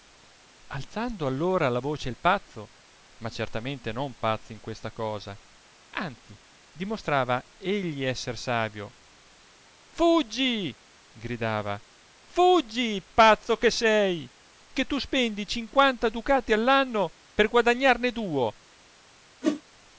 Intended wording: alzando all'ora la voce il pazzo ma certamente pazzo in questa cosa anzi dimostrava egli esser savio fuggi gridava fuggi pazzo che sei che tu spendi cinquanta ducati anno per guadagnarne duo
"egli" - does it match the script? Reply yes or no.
yes